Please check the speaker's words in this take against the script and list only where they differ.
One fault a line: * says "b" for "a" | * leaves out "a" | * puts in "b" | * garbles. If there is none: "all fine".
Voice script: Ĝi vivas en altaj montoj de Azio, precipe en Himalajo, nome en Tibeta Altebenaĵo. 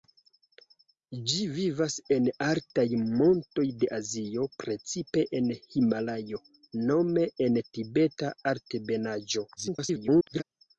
* garbles